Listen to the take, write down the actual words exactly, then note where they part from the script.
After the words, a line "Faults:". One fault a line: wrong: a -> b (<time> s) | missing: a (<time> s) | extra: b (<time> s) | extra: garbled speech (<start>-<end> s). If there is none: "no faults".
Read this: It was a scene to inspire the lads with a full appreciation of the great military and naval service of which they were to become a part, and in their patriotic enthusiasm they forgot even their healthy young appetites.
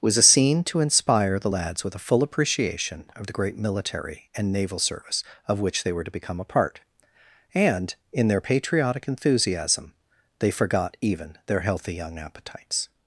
was a scene to inspire the lads with a full appreciation of the great military and naval service of which they were to become a part, and in their patriotic enthusiasm they forgot even their healthy young appetites.
Faults:
missing: It (0.0 s)